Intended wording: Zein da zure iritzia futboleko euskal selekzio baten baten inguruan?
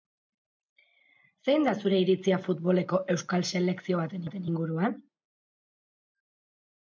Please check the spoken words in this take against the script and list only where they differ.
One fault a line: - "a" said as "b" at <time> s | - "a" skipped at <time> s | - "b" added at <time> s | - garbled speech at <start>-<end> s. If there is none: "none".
none